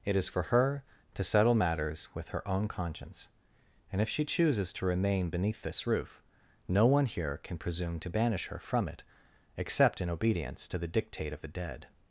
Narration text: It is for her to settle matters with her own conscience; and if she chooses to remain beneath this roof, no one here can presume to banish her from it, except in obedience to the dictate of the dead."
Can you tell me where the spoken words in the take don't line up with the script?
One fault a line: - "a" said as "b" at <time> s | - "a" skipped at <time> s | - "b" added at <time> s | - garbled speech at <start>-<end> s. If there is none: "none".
none